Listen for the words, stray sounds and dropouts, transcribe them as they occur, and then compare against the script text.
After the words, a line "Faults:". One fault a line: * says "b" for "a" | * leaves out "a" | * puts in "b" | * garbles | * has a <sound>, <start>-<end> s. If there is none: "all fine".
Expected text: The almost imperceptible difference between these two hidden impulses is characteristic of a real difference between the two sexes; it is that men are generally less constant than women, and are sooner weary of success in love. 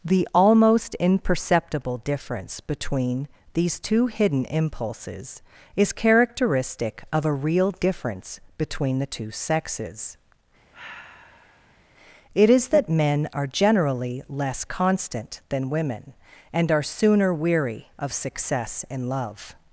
The almost imperceptible difference between these two hidden impulses is characteristic of a real difference between the two sexes; it is that men are generally less constant than women, and are sooner weary of success in love.
Faults:
* has a sigh, 10.7-11.8 s